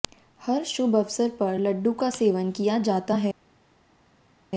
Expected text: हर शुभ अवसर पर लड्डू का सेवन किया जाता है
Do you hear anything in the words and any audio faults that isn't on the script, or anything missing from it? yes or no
no